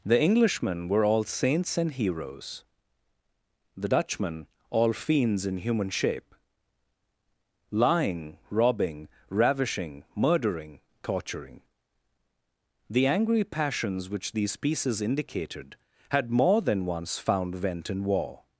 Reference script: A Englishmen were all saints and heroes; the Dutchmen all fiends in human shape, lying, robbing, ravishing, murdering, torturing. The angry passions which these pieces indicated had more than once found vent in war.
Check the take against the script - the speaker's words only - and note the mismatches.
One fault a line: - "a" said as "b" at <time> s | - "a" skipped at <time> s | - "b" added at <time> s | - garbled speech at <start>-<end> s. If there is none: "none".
- "A" said as "The" at 0.0 s